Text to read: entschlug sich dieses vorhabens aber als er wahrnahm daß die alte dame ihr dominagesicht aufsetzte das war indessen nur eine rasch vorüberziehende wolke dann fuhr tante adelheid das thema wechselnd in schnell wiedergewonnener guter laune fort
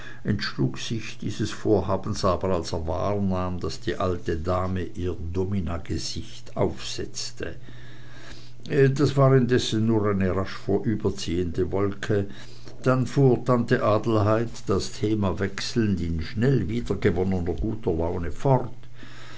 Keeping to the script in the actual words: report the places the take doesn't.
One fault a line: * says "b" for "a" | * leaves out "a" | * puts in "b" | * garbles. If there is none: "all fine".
all fine